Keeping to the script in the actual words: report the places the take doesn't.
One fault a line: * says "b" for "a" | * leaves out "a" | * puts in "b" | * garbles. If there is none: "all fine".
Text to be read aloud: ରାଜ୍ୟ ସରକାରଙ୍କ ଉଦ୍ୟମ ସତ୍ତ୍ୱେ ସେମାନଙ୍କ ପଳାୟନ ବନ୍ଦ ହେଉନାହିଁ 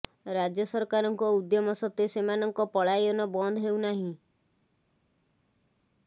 all fine